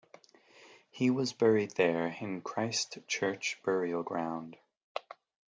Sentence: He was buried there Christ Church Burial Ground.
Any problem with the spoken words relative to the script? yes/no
yes